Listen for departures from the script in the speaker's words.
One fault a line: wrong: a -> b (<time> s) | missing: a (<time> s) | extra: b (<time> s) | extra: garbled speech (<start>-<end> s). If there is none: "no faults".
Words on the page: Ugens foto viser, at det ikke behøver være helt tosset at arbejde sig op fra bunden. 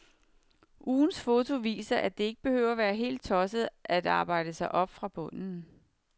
no faults